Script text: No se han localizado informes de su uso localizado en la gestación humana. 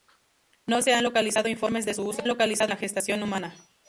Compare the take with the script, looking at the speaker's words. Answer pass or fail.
pass